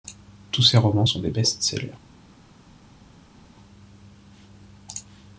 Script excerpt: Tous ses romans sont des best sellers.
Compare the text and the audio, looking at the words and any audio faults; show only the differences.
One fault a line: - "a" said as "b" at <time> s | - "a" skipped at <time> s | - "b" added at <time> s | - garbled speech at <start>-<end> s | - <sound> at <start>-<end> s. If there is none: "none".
none